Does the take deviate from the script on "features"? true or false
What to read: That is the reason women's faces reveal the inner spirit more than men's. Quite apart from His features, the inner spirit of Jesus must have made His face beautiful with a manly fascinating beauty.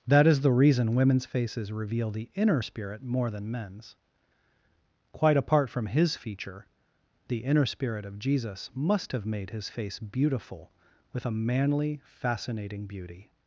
true